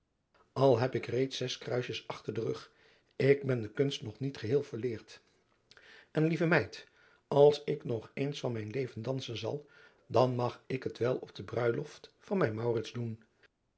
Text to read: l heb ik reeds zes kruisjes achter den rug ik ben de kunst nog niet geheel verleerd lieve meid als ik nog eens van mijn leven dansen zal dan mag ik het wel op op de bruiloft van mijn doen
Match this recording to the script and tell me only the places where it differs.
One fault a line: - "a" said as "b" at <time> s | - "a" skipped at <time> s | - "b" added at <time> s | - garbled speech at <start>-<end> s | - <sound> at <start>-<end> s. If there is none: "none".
- "en" added at 6.1 s
- "op" skipped at 11.4 s